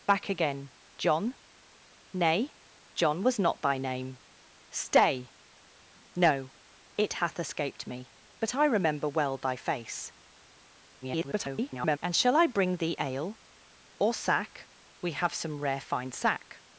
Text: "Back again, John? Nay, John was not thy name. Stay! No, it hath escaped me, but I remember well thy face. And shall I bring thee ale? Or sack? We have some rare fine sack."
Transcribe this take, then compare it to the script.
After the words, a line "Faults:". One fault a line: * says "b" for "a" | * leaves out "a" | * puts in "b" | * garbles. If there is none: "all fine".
"Back again, John? Nay, John was not thy name. Stay! No, it hath escaped me, but I remember well thy face. [garbled] And shall I bring thee ale? Or sack? We have some rare fine sack."
Faults:
* garbles